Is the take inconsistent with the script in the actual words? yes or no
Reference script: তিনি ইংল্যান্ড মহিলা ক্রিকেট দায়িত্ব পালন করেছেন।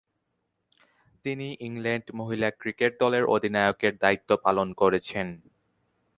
yes